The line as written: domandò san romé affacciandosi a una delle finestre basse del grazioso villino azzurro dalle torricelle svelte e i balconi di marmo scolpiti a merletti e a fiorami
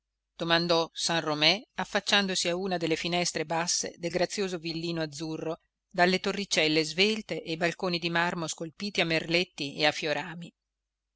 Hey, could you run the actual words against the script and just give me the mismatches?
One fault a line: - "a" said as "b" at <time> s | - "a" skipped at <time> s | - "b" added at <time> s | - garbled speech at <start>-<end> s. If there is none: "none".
none